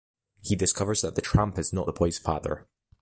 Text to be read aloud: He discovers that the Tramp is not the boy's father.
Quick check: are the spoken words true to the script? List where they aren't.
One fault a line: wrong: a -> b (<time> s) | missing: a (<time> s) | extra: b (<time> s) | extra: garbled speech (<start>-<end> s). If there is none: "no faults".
no faults